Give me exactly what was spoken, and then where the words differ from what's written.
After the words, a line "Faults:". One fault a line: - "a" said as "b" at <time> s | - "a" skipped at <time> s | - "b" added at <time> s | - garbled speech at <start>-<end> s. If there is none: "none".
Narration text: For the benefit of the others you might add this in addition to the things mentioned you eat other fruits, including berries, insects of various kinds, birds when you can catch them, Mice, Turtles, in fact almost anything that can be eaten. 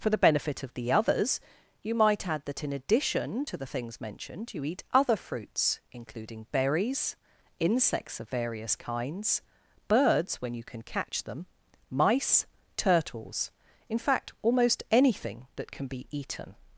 For the benefit of the others you might add that in addition to the things mentioned you eat other fruits, including berries, insects of various kinds, birds when you can catch them, Mice, Turtles, in fact almost anything that can be eaten.
Faults:
- "this" said as "that" at 2.5 s